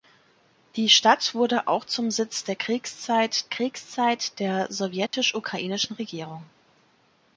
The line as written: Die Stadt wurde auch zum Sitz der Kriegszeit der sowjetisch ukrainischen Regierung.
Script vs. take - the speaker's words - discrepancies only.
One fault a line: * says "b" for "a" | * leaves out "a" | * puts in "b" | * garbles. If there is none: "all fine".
* puts in "Kriegszeit"